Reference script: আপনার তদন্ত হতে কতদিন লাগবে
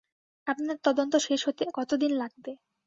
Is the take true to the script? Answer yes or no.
no